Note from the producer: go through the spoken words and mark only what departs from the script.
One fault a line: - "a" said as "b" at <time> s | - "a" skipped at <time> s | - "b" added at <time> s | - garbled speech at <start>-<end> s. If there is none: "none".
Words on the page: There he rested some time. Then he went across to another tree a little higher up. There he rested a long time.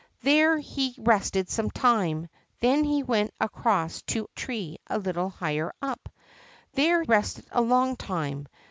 - "another" skipped at 4.3 s
- "he" skipped at 7.0 s